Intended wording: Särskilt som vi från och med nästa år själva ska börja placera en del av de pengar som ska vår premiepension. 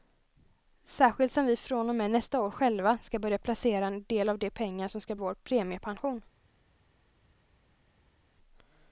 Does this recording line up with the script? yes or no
yes